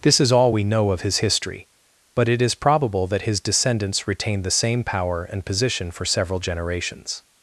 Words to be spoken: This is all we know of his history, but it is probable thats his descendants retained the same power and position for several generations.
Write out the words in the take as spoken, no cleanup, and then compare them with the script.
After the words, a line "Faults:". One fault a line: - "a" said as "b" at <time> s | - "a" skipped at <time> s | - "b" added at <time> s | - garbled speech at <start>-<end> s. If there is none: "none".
This is all we know of his history, but it is probable that his descendants retained the same power and position for several generations.
Faults:
- "thats" said as "that" at 3.1 s